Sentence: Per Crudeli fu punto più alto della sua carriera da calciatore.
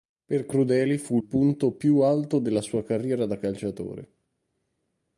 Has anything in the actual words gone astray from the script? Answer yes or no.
no